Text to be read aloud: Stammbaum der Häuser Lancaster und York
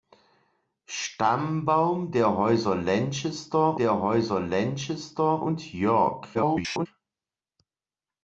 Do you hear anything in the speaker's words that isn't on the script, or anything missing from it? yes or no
yes